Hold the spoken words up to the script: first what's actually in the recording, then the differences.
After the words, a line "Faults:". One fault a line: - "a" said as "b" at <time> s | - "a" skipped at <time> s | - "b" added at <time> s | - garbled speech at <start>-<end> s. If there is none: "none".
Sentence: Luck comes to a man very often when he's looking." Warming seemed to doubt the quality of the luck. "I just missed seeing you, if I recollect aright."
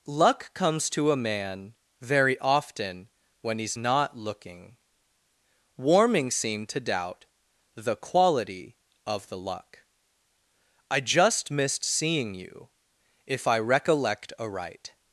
Luck comes to a man very often when he's not looking." Warming seemed to doubt the quality of the luck. "I just missed seeing you, if I recollect aright."
Faults:
- "not" added at 3.7 s